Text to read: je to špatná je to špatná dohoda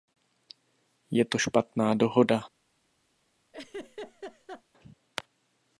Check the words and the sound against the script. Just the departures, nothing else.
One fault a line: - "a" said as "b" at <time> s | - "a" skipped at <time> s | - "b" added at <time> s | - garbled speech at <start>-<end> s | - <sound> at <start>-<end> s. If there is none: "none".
- "je to špatná" skipped at 1.9 s
- laugh at 3.5-4.6 s